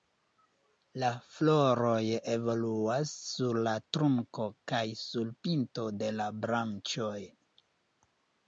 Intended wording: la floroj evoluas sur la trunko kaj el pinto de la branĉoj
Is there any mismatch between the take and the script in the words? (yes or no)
yes